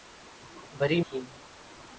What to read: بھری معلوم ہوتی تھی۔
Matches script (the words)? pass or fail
fail